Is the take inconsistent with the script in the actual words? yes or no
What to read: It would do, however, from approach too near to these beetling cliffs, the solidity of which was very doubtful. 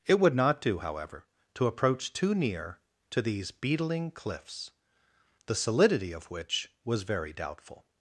yes